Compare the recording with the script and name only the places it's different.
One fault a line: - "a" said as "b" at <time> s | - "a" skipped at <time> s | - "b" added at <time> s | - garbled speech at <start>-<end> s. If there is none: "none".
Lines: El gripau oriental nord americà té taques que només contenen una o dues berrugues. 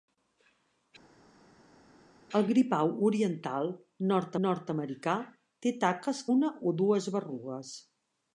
- "nord" added at 4.5 s
- "que només contenen" skipped at 6.2 s